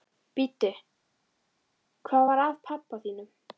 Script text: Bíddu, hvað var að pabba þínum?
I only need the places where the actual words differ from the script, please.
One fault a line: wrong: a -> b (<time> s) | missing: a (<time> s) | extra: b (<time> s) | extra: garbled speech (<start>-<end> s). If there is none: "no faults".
no faults